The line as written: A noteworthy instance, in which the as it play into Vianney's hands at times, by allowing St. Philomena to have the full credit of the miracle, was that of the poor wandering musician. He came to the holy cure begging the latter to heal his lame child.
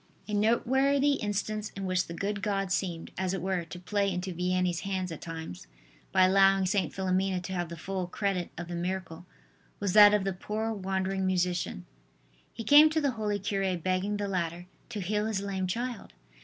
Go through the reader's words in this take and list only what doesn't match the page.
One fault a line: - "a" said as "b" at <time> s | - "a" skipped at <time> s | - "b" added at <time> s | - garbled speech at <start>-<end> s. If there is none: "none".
- "good God seemed" added at 2.1 s
- "were to" added at 3.4 s